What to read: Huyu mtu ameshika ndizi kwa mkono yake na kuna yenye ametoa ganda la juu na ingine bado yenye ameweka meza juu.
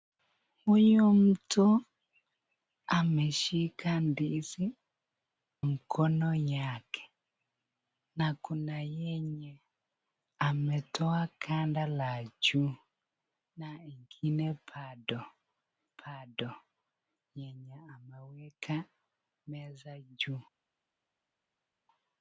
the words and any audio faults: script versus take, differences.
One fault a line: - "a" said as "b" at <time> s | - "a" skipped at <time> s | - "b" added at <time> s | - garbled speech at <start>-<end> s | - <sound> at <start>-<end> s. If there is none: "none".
- "kwa" skipped at 4.8 s
- "bado" added at 16.1 s